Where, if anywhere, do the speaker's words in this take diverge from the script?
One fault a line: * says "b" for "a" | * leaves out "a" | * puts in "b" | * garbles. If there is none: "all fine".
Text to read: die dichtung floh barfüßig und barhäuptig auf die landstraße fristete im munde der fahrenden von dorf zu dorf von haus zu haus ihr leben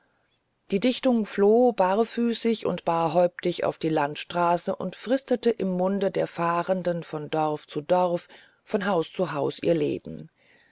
* puts in "und"